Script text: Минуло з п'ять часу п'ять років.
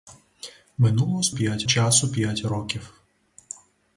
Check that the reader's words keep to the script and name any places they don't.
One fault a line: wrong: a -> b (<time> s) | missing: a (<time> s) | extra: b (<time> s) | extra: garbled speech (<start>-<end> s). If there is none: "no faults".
no faults